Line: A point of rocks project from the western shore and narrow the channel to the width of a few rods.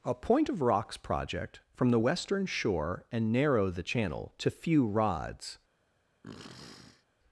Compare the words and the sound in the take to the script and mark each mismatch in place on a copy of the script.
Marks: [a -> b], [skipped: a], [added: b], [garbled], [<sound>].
A point of rocks project from the western shore and narrow the channel to [skipped: the width of a] few rods. [sniff]